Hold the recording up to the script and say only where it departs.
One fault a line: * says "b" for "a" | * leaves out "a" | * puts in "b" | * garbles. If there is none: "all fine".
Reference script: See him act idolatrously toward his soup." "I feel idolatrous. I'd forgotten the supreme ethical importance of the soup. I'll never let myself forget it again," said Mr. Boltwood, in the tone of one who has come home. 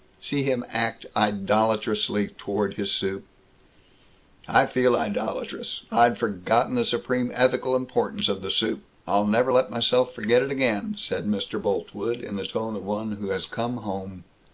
all fine